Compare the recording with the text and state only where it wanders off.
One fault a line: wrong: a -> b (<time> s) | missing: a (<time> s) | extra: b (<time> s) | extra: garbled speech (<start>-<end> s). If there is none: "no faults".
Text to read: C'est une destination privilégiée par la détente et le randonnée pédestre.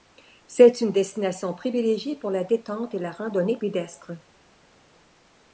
wrong: par -> pour (2.1 s)
wrong: le -> la (3.0 s)